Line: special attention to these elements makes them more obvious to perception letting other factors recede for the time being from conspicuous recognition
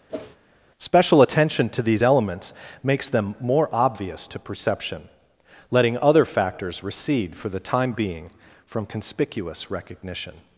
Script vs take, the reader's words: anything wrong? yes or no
no